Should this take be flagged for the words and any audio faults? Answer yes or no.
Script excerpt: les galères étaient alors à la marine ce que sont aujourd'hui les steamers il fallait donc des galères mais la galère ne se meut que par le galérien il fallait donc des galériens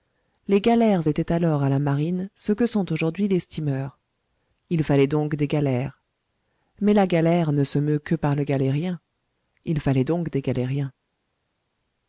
no